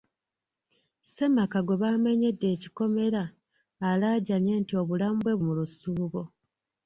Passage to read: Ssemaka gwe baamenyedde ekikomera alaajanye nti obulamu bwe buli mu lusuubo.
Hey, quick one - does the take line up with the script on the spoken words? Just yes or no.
no